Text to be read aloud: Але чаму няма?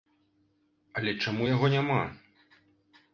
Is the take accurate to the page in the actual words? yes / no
no